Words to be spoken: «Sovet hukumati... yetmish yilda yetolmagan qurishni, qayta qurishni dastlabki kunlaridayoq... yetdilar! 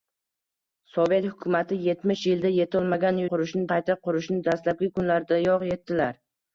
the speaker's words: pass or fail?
pass